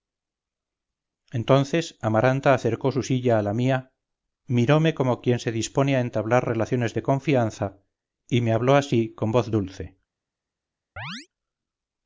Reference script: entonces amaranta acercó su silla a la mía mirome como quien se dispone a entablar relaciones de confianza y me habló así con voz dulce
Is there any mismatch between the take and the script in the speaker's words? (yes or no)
no